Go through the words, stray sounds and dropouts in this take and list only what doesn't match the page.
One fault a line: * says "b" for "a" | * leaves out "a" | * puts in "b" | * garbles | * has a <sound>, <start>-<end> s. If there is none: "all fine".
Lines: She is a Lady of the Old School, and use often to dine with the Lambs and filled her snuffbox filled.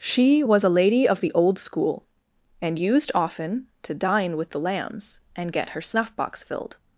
* says "was" for "is"
* says "used" for "use"
* says "get" for "filled"